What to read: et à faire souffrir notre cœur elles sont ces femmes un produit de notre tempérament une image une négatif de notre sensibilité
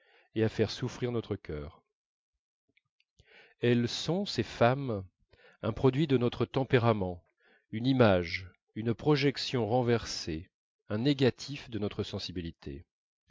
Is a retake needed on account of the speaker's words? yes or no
yes